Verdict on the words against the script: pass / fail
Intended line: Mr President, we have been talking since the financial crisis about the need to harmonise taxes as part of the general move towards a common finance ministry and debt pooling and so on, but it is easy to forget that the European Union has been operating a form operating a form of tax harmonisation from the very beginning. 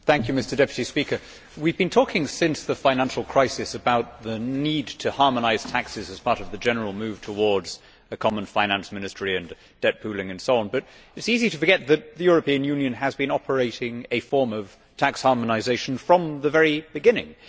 fail